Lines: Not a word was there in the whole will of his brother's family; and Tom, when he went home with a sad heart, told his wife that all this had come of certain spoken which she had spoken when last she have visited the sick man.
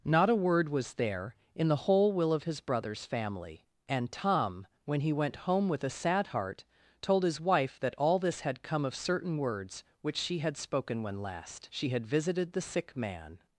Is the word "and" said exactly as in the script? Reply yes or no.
yes